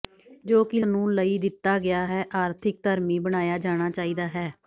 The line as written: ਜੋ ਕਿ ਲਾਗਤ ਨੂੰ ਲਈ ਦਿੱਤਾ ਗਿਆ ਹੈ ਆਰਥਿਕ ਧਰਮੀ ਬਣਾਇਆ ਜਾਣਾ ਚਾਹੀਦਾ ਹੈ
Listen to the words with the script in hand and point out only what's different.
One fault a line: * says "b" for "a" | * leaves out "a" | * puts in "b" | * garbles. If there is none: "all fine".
* leaves out "ਲਾਗਤ"